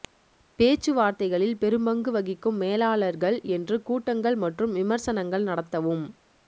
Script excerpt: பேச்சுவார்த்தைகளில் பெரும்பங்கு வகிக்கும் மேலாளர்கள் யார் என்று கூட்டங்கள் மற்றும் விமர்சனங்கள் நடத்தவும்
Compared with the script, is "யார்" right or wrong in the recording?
wrong